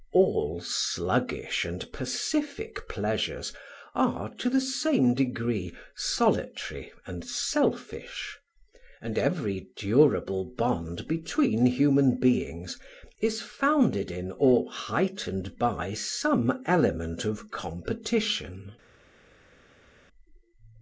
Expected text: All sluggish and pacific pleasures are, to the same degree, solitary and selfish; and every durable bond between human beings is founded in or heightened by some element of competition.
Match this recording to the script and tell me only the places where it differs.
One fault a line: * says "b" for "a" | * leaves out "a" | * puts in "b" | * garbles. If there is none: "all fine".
all fine